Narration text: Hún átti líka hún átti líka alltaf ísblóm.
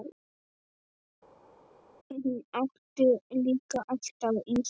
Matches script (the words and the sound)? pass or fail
fail